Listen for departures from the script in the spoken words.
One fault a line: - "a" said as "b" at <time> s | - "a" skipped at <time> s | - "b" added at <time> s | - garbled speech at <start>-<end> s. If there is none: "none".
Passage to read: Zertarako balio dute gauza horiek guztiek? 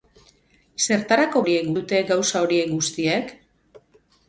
- "balio" said as "horiek" at 1.4 s